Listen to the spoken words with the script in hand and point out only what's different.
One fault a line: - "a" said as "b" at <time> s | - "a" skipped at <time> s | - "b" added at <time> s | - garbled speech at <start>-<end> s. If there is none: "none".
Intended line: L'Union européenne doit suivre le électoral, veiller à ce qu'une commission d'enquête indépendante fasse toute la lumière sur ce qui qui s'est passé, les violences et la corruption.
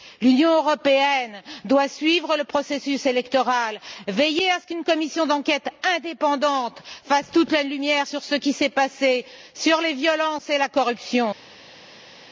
- "processus" added at 2.4 s
- "qui" skipped at 8.5 s
- "sur" added at 9.5 s